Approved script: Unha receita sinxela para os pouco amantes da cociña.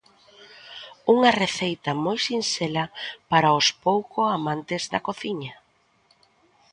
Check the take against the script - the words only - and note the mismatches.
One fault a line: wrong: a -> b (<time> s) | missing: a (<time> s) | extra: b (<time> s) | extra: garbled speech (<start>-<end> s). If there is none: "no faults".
extra: moi (2.0 s)